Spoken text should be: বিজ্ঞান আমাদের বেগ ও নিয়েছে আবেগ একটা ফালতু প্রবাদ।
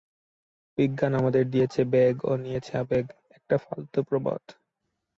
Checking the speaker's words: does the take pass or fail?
fail